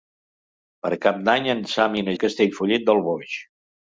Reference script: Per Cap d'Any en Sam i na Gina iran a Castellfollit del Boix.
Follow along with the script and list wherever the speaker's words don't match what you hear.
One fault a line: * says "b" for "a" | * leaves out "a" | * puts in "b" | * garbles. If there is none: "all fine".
* leaves out "Gina iran"